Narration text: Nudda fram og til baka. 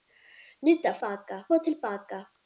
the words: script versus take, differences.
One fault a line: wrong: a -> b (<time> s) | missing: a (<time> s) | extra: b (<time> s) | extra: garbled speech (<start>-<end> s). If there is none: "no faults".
wrong: fram -> baka (1.0 s)